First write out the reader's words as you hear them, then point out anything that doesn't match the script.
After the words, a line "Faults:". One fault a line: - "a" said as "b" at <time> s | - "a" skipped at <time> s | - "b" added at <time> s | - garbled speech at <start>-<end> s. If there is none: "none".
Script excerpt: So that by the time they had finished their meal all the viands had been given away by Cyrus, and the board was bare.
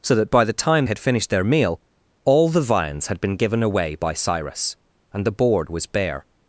So that by the time had finished their meal all the viands had been given away by Cyrus, and the board was bare.
Faults:
- "they" skipped at 0.8 s